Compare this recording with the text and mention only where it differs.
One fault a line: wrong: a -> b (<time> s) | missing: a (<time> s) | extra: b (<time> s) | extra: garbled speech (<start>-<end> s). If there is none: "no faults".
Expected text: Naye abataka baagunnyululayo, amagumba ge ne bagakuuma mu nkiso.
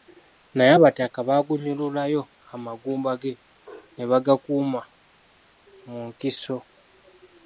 no faults